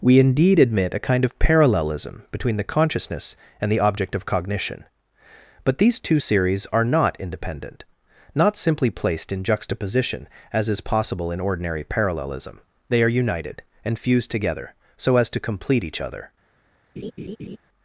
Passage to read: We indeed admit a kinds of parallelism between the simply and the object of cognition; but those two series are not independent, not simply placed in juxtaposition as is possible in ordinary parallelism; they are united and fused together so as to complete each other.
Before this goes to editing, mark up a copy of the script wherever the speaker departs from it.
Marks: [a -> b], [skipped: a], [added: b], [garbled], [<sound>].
We indeed admit a [kinds -> kind] of parallelism between the [simply -> consciousness] and the object of cognition; but [those -> these] two series are not independent, not simply placed in juxtaposition as is possible in ordinary parallelism; they are united and fused together so as to complete each other. [laugh]